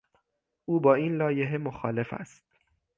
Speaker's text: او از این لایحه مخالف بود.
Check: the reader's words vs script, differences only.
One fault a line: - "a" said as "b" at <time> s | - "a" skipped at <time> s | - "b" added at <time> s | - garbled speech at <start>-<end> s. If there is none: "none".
- "از" said as "با" at 0.8 s
- "بود" said as "است" at 2.1 s